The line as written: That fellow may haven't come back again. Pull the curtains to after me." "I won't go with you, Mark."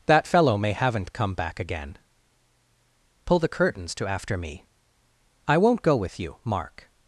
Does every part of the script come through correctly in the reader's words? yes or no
yes